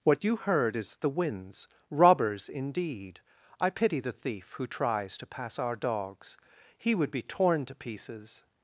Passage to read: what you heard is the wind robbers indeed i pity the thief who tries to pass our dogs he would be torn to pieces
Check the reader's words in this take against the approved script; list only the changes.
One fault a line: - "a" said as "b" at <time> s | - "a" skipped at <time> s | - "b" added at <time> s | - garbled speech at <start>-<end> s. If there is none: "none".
- "wind" said as "winds" at 1.1 s